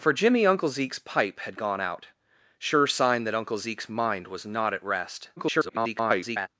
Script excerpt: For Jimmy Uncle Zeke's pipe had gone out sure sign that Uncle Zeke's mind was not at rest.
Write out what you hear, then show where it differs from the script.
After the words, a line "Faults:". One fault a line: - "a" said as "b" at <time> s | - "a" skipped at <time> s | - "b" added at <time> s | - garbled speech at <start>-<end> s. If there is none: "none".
For Jimmy Uncle Zeke's pipe had gone out sure sign that Uncle Zeke's mind was not at rest. [garbled]
Faults:
- garbled speech at 5.4-6.5 s